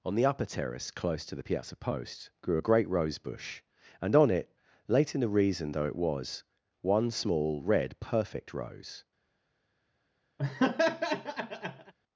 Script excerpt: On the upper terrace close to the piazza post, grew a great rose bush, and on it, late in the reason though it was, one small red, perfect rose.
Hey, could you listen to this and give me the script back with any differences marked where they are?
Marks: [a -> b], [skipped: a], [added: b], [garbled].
On the upper terrace close to the piazza post, grew a great rose bush, and on it, late in the reason though it was, one small red, perfect rose.